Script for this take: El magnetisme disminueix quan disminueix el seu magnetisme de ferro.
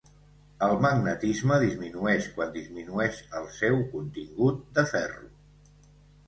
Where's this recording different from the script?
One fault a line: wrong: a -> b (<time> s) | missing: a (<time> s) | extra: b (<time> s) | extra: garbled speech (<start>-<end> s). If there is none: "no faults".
wrong: magnetisme -> contingut (3.9 s)